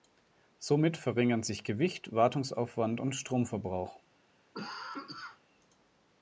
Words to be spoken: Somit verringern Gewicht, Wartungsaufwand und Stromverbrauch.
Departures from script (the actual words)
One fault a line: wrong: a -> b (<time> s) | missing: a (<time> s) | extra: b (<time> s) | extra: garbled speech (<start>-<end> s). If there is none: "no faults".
extra: sich (1.4 s)